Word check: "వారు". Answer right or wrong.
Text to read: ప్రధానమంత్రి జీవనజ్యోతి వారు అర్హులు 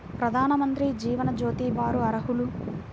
right